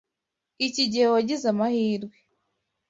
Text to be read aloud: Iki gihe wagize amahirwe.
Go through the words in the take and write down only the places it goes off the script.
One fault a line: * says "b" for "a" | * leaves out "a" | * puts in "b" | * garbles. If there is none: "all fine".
all fine